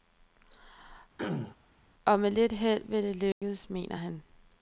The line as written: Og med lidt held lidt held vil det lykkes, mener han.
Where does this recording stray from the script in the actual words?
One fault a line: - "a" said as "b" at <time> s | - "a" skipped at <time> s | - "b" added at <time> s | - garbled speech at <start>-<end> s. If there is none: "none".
- "lidt held" skipped at 2.8 s